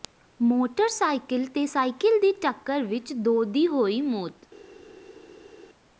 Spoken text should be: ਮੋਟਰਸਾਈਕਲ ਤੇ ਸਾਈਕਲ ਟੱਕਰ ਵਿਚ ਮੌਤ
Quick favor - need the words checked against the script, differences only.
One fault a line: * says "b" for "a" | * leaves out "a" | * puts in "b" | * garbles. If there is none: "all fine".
* puts in "ਦੀ"
* puts in "ਦੋ ਦੀ ਹੋਈ"